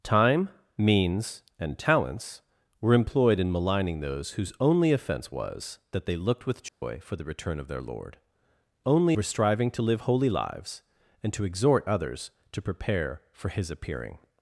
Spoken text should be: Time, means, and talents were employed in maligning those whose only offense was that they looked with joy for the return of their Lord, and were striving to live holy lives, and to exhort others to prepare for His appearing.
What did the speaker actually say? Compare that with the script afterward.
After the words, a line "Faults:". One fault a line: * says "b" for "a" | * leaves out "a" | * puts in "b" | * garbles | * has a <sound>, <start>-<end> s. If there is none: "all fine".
Time, means, and talents were employed in maligning those whose only offense was that they looked with joy for the return of their Lord, only were striving to live holy lives, and to exhort others to prepare for His appearing.
Faults:
* has a dropout, 6.7-6.8 s
* says "only" for "and"